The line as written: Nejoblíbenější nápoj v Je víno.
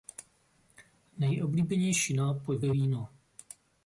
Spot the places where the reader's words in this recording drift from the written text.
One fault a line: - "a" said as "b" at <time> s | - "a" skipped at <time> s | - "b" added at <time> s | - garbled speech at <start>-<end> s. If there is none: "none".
none